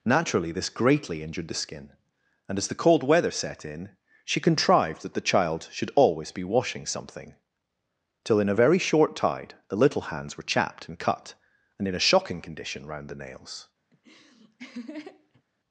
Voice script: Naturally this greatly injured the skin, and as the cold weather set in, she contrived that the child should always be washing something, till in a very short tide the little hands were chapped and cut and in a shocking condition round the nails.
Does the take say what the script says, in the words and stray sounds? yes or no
no